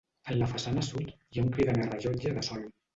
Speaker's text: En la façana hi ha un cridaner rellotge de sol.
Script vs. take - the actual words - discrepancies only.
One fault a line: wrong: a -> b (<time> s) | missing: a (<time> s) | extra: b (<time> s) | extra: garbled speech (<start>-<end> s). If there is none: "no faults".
extra: sud (0.9 s)